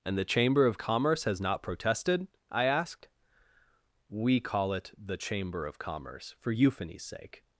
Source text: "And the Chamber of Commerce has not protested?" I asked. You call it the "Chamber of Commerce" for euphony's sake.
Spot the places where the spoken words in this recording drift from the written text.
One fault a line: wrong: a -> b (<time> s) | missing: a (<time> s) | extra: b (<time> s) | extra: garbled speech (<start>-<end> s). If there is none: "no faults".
wrong: You -> We (4.1 s)